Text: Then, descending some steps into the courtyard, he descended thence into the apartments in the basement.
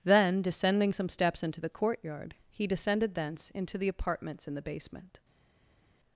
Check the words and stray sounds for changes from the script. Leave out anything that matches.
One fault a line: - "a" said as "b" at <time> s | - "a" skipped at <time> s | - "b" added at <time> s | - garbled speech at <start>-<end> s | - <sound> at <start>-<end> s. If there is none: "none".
none